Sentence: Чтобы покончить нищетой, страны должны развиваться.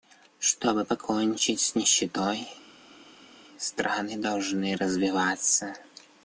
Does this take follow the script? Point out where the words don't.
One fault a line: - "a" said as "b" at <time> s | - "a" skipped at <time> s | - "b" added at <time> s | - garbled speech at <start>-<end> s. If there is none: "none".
- "с" added at 1.6 s